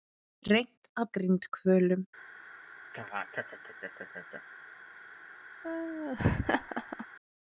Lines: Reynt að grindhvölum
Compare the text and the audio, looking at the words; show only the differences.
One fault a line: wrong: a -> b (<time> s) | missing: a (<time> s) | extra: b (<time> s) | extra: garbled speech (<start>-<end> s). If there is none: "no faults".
no faults